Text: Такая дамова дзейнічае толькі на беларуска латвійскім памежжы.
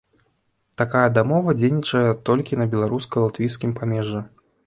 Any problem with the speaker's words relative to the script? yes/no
no